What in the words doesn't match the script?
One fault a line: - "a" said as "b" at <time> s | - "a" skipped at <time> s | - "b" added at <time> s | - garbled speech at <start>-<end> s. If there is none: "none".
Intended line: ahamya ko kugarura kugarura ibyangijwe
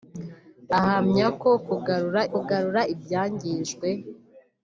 none